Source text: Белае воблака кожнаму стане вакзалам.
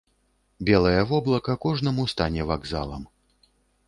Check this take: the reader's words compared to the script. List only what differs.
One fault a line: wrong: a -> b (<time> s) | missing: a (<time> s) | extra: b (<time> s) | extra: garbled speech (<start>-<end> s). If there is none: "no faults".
no faults